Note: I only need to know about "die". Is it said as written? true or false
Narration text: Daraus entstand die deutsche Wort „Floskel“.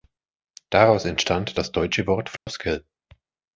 false